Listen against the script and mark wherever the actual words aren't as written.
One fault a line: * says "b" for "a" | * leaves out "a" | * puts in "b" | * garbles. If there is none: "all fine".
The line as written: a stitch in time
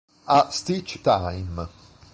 * leaves out "in"